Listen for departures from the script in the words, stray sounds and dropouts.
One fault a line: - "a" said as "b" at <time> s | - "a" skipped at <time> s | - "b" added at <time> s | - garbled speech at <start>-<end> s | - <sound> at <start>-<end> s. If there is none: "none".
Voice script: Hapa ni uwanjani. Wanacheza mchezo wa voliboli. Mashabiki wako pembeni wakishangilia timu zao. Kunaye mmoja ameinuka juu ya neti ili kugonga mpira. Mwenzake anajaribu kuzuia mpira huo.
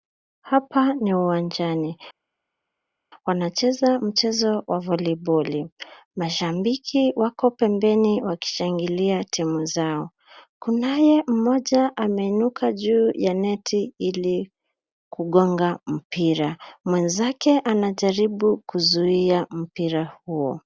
none